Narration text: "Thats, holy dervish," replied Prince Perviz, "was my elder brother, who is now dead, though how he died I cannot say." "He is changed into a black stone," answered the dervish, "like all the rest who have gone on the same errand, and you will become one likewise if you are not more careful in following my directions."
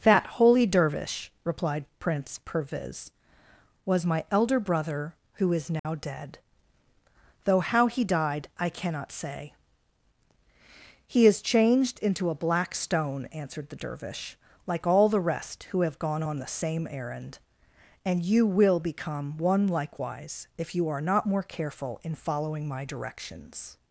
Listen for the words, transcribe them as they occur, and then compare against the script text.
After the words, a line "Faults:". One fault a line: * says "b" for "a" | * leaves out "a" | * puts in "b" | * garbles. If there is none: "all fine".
"That, holy dervish," replied Prince Perviz, "was my elder brother, who is now dead, though how he died I cannot say." "He is changed into a black stone," answered the dervish, "like all the rest who have gone on the same errand, and you will become one likewise if you are not more careful in following my directions."
Faults:
* says "That" for "Thats"